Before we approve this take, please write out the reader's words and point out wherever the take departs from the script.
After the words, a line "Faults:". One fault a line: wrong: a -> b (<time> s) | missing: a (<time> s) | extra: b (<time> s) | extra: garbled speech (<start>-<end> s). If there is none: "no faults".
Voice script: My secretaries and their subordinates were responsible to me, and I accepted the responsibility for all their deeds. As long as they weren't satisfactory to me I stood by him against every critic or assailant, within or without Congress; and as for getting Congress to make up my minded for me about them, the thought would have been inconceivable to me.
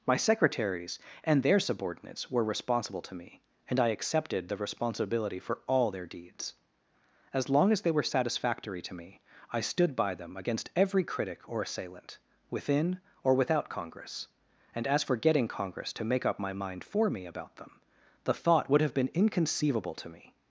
My secretaries and their subordinates were responsible to me, and I accepted the responsibility for all their deeds. As long as they were satisfactory to me I stood by them against every critic or assailant, within or without Congress; and as for getting Congress to make up my mind for me about them, the thought would have been inconceivable to me.
Faults:
wrong: weren't -> were (7.9 s)
wrong: him -> them (10.2 s)
wrong: minded -> mind (16.5 s)